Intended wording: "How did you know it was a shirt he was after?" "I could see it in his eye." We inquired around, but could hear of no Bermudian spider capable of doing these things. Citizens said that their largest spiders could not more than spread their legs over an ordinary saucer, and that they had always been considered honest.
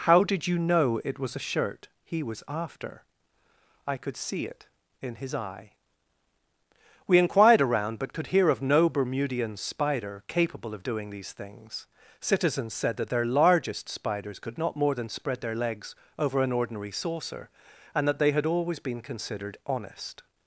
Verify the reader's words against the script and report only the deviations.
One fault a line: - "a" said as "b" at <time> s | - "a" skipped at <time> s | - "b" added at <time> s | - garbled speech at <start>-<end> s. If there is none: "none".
none